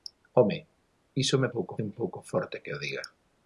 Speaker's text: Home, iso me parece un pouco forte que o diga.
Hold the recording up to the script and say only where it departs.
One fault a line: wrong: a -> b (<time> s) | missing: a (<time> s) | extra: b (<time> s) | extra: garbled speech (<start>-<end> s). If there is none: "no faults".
wrong: parece -> pouco (1.5 s)